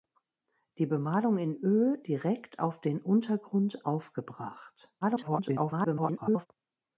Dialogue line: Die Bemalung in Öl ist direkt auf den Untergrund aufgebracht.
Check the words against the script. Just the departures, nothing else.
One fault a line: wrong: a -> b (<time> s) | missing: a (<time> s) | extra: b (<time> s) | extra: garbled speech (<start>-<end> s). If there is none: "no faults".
missing: ist (2.0 s)
extra: garbled speech (5.0-6.5 s)